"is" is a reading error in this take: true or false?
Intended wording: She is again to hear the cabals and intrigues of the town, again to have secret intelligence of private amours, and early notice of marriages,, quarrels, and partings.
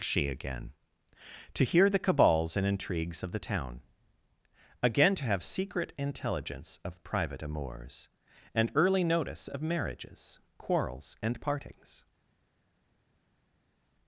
true